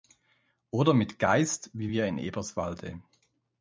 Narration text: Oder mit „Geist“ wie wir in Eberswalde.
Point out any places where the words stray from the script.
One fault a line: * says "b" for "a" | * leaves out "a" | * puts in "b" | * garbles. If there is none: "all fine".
all fine